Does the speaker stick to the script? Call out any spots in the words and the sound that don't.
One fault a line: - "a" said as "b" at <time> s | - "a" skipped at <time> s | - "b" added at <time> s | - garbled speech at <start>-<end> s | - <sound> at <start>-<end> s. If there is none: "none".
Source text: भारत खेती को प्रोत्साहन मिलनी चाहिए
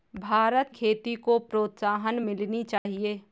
- dropout at 2.8-2.9 s